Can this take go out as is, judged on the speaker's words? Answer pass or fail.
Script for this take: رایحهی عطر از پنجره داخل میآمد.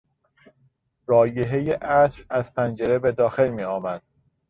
fail